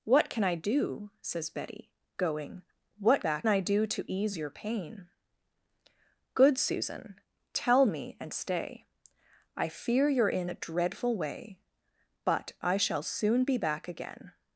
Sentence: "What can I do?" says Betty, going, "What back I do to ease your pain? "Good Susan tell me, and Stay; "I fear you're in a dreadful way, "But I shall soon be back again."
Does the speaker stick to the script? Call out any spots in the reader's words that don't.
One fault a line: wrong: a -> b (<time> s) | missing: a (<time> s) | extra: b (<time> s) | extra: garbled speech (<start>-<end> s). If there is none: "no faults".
no faults